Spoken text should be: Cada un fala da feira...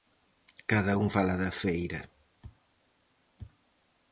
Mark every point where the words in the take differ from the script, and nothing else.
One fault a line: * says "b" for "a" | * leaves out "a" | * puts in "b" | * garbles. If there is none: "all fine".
all fine